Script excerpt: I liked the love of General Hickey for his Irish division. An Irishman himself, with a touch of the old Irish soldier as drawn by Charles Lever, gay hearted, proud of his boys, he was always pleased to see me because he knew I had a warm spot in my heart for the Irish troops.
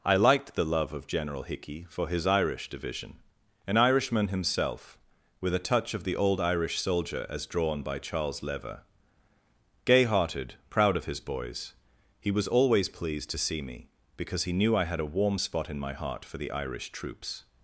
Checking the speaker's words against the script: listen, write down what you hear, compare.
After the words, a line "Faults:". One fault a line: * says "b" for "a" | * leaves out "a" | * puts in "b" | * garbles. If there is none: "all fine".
I liked the love of General Hickey for his Irish division. An Irishman himself, with a touch of the old Irish soldier as drawn by Charles Lever, gay hearted, proud of his boys, he was always pleased to see me because he knew I had a warm spot in my heart for the Irish troops.
Faults:
all fine